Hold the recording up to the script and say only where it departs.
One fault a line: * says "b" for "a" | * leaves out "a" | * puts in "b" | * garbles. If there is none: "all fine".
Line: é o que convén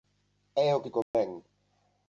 all fine